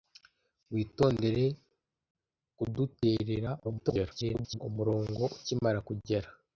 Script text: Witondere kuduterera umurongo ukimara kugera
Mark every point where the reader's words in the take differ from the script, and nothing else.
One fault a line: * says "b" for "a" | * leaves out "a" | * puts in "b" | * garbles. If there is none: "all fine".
* garbles